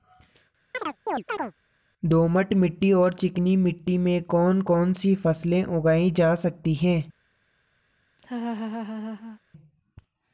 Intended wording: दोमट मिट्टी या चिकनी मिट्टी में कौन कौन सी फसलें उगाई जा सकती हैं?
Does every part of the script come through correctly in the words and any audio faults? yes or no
no